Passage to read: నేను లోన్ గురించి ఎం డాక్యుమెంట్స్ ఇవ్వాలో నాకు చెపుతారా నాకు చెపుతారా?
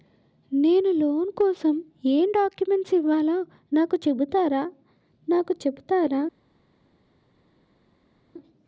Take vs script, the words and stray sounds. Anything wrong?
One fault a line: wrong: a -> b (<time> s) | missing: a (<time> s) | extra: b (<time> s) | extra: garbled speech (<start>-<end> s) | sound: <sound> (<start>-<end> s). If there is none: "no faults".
wrong: గురించి -> కోసం (1.3 s)